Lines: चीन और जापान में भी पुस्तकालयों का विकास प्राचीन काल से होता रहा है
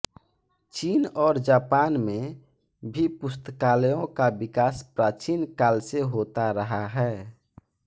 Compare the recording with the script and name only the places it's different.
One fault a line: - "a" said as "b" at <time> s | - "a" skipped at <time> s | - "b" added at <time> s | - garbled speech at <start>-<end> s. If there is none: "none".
none